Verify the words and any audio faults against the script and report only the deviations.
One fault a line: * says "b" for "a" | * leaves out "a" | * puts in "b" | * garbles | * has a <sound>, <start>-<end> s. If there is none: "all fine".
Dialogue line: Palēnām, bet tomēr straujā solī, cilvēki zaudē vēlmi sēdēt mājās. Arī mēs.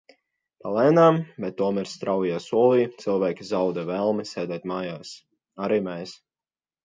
all fine